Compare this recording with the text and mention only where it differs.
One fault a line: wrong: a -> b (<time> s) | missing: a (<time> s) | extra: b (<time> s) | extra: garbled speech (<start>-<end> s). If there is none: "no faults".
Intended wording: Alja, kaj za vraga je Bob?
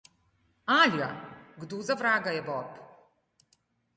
wrong: kaj -> kdo (1.6 s)